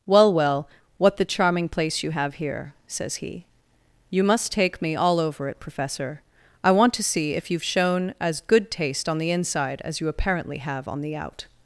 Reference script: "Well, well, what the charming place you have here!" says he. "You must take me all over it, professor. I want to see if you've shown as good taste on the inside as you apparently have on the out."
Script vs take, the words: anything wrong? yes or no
no